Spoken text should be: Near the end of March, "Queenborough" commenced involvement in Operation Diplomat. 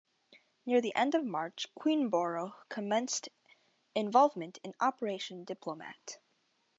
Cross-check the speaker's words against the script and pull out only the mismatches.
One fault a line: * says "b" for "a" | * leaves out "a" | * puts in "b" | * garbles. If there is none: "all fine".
all fine